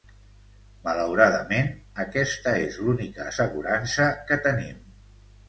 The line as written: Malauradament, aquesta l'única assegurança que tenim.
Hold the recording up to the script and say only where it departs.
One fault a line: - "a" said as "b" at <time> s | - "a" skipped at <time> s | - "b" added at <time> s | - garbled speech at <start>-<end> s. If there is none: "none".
- "és" added at 2.6 s